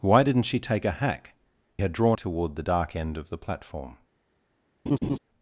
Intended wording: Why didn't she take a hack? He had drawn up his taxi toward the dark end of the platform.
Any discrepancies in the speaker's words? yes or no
yes